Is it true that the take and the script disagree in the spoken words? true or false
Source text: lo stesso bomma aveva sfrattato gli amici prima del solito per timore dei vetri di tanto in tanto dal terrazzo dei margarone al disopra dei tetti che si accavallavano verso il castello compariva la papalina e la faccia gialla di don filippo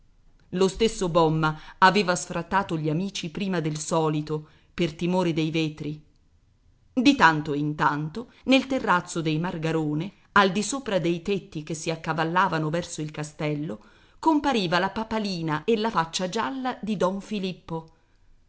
true